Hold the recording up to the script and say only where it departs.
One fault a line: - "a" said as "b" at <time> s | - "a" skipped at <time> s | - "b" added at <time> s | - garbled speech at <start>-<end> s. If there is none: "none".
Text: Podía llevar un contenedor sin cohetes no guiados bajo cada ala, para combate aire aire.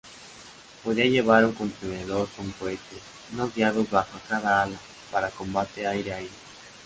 - "sin" said as "con" at 2.4 s